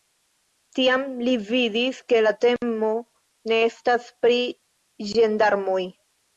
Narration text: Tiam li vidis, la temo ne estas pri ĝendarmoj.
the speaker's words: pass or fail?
fail